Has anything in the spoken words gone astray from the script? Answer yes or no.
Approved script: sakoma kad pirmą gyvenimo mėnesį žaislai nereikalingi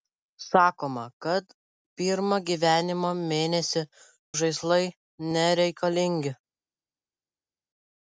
no